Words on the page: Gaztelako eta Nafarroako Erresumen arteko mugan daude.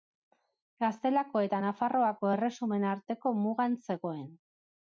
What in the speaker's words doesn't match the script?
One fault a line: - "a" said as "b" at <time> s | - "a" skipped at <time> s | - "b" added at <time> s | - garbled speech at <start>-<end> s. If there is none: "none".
- "daude" said as "zegoen" at 3.9 s